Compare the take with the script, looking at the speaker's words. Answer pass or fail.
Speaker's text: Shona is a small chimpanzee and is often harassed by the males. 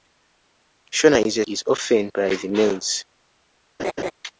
fail